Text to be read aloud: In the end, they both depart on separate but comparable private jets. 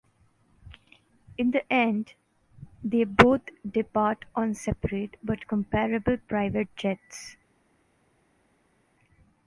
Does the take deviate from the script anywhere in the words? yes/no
no